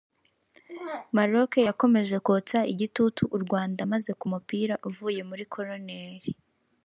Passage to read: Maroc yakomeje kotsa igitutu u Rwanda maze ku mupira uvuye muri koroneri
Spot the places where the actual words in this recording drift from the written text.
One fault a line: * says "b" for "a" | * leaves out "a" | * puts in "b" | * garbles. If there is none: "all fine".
all fine